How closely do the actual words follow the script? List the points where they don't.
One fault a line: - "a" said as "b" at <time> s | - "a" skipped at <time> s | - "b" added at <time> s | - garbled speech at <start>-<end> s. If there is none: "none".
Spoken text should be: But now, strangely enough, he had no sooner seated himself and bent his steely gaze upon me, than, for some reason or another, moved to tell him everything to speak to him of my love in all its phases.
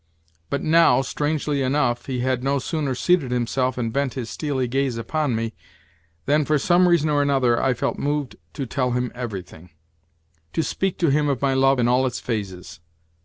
- "I felt" added at 7.6 s